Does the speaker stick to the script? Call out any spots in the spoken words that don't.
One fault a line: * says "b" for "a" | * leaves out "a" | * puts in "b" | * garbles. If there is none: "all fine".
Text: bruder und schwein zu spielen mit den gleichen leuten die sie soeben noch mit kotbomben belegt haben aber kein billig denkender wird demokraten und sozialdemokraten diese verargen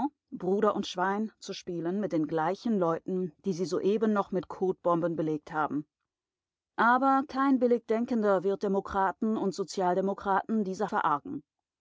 all fine